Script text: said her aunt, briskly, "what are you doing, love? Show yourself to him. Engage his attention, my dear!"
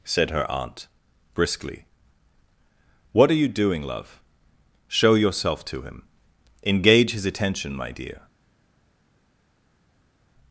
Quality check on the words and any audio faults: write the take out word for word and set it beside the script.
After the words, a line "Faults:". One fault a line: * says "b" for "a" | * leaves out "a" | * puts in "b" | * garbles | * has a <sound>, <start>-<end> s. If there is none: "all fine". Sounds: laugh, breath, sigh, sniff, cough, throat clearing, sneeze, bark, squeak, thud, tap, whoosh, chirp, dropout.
said her aunt, briskly, "what are you doing, love? Show yourself to him. Engage his attention, my dear!"
Faults:
all fine